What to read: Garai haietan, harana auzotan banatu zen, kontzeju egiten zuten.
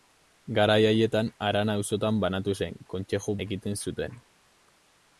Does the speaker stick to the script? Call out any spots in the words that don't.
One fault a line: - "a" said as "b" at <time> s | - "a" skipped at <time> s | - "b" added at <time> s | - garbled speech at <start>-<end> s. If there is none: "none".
none